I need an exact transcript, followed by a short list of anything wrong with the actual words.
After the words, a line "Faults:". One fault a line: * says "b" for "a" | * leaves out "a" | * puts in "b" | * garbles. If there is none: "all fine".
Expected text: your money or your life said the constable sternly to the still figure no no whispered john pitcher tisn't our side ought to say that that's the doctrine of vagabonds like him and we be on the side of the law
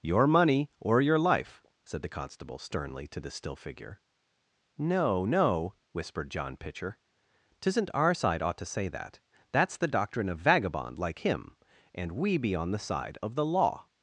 your money or your life said the constable sternly to the still figure no no whispered john pitcher tisn't our side ought to say that that's the doctrine of vagabond like him and we be on the side of the law
Faults:
* says "vagabond" for "vagabonds"